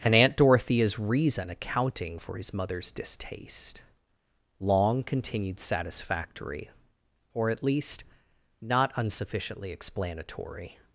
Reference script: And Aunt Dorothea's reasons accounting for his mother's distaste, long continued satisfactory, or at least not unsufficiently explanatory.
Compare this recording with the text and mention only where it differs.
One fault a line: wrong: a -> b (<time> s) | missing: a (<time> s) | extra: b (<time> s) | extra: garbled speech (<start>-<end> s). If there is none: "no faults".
wrong: reasons -> reason (1.0 s)